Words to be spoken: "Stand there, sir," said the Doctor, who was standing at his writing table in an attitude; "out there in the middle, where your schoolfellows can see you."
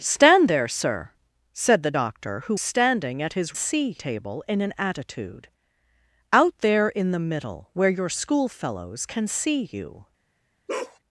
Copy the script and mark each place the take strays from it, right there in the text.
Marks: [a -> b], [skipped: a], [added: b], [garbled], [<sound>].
"Stand there, sir," said the Doctor, who [skipped: was] standing at his [writing -> see] table in an attitude; "out there in the middle, where your schoolfellows can see you." [bark]